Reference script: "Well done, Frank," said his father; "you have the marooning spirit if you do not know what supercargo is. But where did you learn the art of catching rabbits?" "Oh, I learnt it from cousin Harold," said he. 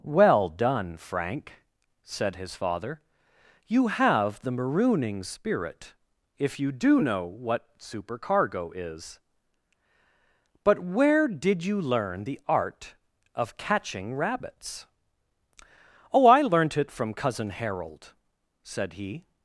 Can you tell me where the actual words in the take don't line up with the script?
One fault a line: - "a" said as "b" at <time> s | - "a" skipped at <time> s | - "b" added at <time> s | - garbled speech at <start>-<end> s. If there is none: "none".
- "not" skipped at 7.0 s